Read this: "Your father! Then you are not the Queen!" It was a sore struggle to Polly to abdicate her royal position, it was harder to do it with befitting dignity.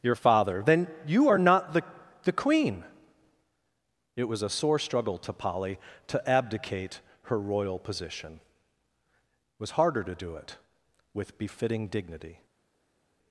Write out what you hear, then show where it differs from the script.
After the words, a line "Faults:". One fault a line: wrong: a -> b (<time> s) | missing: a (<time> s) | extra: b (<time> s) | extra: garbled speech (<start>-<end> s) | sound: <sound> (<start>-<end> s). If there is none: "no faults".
"Your father! Then you are not the the Queen!" It was a sore struggle to Polly to abdicate her royal position, it was harder to do it with befitting dignity.
Faults:
extra: the (2.2 s)